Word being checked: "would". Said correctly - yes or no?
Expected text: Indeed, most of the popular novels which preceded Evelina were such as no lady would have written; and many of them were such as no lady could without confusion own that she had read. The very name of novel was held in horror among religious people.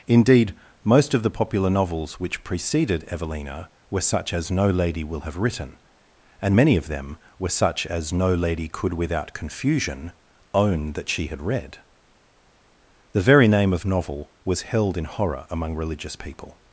no